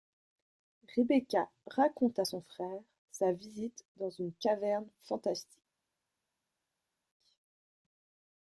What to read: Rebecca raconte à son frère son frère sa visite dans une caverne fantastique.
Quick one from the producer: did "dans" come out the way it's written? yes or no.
yes